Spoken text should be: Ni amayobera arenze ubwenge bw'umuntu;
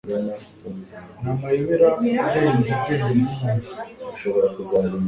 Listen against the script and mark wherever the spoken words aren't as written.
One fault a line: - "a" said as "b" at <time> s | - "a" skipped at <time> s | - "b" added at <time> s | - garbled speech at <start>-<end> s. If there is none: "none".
none